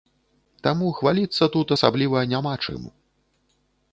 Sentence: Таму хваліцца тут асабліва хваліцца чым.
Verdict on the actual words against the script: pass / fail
fail